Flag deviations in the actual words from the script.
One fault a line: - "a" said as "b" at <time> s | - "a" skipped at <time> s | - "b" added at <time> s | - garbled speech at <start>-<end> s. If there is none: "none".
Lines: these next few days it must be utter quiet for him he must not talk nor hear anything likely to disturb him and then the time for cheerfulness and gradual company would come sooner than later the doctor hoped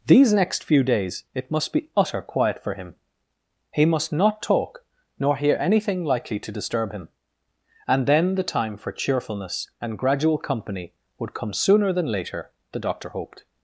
none